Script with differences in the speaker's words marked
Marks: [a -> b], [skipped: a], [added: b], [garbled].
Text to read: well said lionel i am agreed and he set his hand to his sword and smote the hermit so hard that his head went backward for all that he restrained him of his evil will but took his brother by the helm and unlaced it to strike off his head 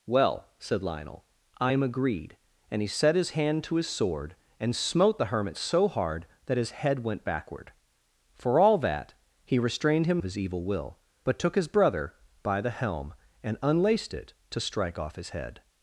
well said lionel i am agreed and he set his hand to his sword and smote the hermit so hard that his head went backward for all that he restrained him of his evil will but took his brother by the helm and unlaced it to strike off his head